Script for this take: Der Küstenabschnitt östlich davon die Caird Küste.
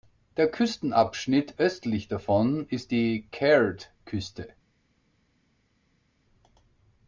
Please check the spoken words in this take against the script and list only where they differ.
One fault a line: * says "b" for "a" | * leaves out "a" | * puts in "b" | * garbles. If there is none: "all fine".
* puts in "ist"